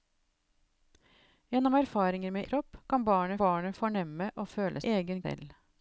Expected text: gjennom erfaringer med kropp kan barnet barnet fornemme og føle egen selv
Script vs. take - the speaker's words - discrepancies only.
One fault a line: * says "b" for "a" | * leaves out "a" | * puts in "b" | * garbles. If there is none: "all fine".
all fine